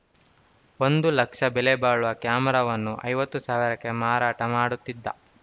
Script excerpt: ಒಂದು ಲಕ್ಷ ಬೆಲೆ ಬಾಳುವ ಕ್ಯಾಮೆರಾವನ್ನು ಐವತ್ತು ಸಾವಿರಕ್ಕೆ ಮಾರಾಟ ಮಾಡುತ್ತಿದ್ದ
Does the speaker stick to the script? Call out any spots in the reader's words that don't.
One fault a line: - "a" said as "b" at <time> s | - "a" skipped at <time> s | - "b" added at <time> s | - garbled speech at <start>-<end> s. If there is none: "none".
none